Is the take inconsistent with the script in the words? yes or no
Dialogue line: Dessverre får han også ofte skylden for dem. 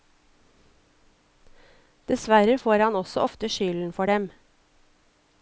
no